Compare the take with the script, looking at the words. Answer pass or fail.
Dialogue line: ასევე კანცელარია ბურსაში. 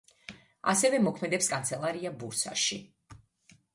fail